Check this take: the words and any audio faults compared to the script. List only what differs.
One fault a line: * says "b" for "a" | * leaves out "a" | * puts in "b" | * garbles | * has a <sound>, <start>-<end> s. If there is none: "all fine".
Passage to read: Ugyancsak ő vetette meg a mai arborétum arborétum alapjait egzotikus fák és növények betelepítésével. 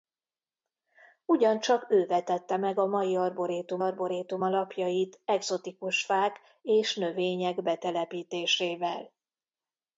all fine